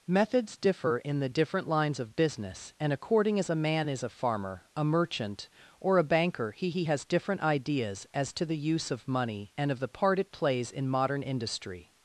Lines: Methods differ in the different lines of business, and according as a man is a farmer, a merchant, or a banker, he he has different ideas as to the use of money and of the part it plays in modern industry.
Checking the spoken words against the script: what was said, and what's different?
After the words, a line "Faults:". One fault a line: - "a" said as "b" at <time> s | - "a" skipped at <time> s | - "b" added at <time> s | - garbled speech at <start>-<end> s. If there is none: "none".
Methods differ in the different lines of business, and according as a man is a farmer, a merchant, or a banker, he he has different ideas as to the use of money and of the part it plays in modern industry.
Faults:
none